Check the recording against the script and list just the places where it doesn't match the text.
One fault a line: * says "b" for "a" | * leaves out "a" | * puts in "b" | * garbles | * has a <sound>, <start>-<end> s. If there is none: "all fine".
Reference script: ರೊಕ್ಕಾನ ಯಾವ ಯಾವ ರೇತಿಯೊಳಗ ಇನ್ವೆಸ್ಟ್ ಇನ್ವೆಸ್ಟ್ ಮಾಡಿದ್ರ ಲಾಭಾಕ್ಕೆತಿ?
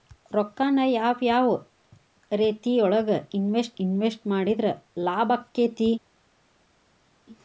all fine